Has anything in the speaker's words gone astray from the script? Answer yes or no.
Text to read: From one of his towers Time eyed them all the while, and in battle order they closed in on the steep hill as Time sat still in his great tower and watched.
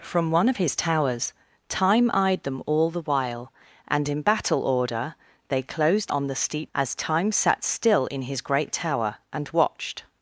yes